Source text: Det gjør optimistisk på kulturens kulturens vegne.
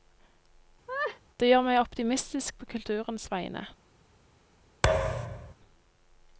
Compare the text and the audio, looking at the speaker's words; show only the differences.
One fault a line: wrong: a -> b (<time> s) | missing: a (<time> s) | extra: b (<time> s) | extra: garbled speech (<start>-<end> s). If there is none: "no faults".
extra: meg (1.7 s)
missing: kulturens (3.3 s)